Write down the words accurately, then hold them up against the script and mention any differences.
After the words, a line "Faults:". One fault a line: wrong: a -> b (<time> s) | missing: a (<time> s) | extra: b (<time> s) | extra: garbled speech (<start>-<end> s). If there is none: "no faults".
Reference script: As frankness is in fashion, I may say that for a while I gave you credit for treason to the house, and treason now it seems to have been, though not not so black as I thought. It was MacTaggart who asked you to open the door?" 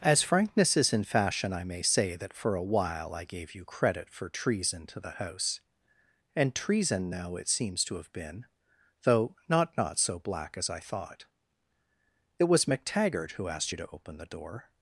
As frankness is in fashion, I may say that for a while I gave you credit for treason to the house, and treason now it seems to have been, though not not so black as I thought. It was MacTaggart who asked you to open the door?"
Faults:
no faults